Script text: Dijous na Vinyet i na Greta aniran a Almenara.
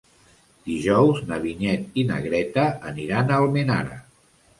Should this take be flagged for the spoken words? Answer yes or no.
no